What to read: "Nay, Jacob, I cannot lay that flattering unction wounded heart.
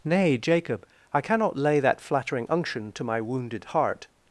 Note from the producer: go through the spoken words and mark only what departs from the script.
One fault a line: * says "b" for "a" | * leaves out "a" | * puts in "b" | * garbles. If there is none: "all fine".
* puts in "to my"